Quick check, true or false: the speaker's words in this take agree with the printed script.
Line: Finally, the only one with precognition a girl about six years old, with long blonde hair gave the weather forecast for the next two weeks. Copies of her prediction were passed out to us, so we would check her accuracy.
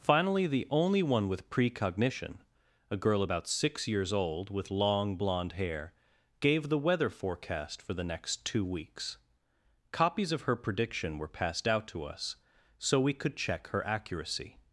false